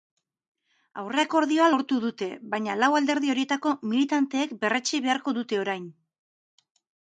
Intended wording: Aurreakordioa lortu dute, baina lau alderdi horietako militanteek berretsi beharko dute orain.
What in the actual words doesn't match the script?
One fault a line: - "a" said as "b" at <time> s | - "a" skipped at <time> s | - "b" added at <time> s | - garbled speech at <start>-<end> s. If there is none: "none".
none